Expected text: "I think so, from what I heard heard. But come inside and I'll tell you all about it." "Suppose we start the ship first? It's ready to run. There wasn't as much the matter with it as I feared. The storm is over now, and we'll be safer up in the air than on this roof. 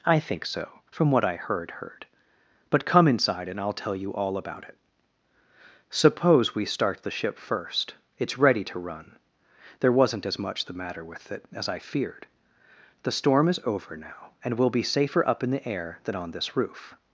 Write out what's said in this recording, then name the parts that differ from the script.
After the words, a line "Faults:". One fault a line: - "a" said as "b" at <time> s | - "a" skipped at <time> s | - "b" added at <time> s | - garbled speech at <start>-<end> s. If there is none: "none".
"I think so, from what I heard heard. But come inside and I'll tell you all about it." "Suppose we start the ship first? It's ready to run. There wasn't as much the matter with it as I feared. The storm is over now, and we'll be safer up in the air than on this roof.
Faults:
none